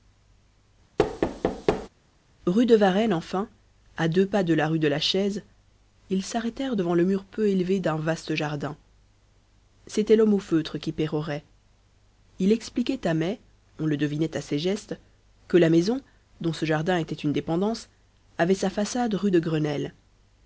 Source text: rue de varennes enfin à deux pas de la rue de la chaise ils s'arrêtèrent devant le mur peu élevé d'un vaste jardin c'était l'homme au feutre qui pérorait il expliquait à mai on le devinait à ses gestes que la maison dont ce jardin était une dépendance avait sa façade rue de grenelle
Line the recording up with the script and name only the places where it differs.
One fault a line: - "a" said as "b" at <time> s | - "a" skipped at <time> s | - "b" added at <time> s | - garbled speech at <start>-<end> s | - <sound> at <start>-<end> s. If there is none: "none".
- thud at 1.0-1.9 s